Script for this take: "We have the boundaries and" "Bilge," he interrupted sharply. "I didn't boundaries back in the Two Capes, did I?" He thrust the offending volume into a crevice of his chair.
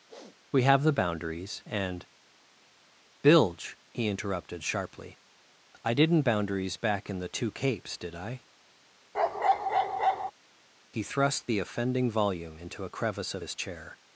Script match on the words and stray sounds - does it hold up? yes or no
no